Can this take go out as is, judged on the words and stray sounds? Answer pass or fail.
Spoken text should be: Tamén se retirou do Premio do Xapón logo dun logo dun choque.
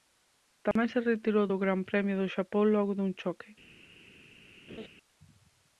fail